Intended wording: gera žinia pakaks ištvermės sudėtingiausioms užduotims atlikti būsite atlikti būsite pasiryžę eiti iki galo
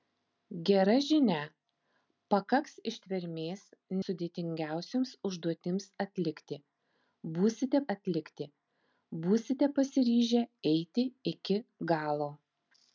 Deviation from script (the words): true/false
false